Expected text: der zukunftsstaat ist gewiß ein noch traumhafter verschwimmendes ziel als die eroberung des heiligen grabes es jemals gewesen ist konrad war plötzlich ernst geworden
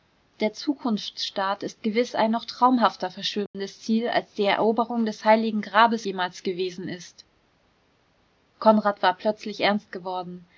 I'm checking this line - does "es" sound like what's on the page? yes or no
no